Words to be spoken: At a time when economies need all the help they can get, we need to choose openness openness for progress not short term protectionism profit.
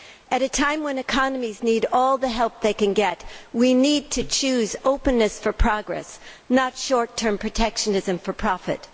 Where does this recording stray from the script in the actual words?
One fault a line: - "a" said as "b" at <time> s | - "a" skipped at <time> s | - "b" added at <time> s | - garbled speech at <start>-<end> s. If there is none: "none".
- "openness" skipped at 5.4 s
- "for" added at 8.2 s